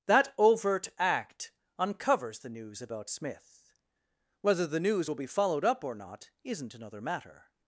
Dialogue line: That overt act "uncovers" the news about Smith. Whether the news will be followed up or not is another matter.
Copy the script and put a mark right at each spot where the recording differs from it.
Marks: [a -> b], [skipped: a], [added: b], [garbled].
That overt act "uncovers" the news about Smith. Whether the news will be followed up or not [is -> isn't] another matter.